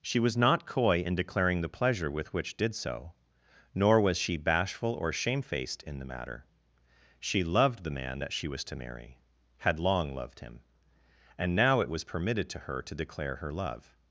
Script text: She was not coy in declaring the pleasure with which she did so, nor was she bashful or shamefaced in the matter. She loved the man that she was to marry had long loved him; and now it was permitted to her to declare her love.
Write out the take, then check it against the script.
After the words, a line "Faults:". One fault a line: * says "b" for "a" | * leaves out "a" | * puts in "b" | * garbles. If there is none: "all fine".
She was not coy in declaring the pleasure with which did so, nor was she bashful or shamefaced in the matter. She loved the man that she was to marry had long loved him; and now it was permitted to her to declare her love.
Faults:
* leaves out "she"